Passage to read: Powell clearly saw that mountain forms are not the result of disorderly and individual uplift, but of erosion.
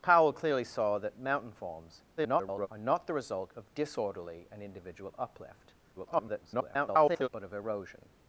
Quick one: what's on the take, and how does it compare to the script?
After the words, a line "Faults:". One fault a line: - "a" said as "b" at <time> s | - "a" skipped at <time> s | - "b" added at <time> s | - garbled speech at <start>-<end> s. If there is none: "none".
Powell clearly saw that mountain forms [garbled] are not the result of disorderly and individual uplift, [garbled] but of erosion.
Faults:
- garbled speech at 2.2-2.7 s
- garbled speech at 6.0-7.3 s